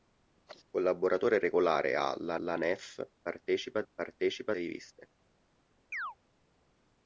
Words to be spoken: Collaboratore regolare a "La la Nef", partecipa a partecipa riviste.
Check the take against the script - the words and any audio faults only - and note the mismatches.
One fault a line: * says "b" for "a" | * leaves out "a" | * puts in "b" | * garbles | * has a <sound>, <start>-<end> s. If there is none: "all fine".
* has a chirp, 5.9-6.2 s